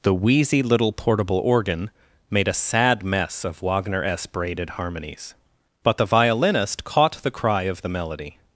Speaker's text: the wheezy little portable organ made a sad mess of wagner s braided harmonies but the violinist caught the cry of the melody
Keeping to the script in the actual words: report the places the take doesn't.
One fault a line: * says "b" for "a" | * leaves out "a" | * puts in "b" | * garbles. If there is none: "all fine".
all fine